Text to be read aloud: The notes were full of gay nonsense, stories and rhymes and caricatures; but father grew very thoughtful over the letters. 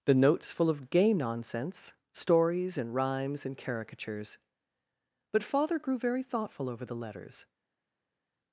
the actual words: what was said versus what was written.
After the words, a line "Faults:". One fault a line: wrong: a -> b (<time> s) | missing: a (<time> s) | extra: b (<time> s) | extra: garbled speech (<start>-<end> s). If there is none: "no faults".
The notes full of gay nonsense, stories and rhymes and caricatures; but father grew very thoughtful over the letters.
Faults:
missing: were (0.5 s)